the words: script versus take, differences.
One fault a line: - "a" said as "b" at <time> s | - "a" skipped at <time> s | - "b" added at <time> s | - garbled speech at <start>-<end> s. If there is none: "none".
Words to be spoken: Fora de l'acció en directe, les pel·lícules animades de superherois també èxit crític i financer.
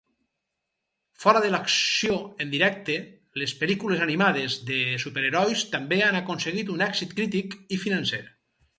- "han aconseguit un" added at 6.1 s